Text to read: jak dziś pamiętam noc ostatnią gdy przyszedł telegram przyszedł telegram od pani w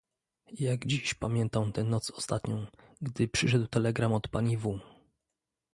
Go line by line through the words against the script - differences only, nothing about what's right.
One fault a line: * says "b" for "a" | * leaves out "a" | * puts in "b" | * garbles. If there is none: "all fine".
* puts in "tę"
* leaves out "przyszedł telegram"